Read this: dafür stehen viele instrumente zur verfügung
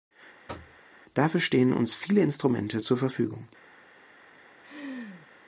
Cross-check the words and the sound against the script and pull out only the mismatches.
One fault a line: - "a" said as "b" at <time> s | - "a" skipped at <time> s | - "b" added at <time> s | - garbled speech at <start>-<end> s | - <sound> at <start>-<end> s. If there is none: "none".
- thud at 0.5-0.8 s
- "uns" added at 1.7 s
- laugh at 4.6-5.3 s